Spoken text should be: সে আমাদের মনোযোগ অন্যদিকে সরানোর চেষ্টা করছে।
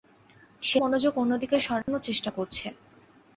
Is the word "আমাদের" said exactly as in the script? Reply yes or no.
no